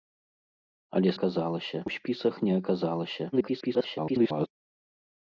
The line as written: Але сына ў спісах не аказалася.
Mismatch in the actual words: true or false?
true